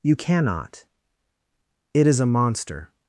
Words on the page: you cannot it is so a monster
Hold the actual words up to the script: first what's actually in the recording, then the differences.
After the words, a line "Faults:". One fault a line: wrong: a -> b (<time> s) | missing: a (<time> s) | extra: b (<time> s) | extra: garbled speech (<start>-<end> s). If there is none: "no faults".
you cannot it is a monster
Faults:
missing: so (2.2 s)